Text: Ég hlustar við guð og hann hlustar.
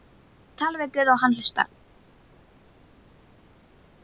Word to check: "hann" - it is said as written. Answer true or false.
true